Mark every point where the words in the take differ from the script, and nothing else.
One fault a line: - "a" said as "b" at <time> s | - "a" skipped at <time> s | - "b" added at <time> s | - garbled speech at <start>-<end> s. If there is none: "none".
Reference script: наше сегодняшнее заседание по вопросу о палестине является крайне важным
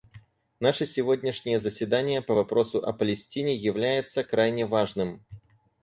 none